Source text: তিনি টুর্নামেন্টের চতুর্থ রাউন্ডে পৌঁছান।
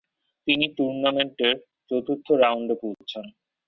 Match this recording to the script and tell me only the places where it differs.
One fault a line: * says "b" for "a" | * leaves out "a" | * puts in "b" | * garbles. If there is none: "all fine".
all fine